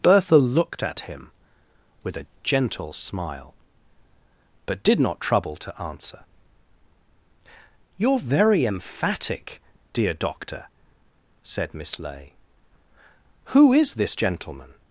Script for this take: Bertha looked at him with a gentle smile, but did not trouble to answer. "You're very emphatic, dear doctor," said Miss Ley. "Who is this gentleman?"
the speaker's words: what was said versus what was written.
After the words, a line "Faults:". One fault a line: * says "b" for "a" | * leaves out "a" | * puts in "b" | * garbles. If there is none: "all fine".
Bertha looked at him with a gentle smile, but did not trouble to answer. "You're very emphatic, dear doctor," said Miss Ley. "Who is this gentleman?"
Faults:
all fine